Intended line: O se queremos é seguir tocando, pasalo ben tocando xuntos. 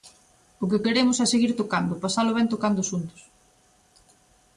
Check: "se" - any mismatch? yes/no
yes